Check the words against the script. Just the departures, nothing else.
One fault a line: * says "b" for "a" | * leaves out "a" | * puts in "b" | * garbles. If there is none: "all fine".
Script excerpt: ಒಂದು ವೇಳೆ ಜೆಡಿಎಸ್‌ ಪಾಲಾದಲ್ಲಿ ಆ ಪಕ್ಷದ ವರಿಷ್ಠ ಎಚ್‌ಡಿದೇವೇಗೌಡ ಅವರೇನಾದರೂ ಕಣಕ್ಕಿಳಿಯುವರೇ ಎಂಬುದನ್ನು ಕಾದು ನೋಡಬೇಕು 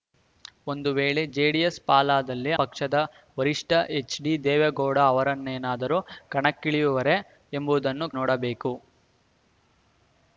* leaves out "ಆ"
* leaves out "ಕಾದು"